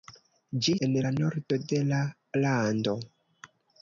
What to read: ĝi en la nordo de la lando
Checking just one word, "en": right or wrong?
right